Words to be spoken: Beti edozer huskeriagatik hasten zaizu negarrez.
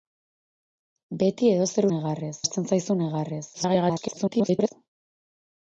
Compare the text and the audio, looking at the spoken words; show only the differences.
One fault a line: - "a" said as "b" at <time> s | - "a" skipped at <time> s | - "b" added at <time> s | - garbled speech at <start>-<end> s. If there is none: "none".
- "huskeriagatik" said as "negarrez" at 1.9 s
- garbled speech at 3.5-4.7 s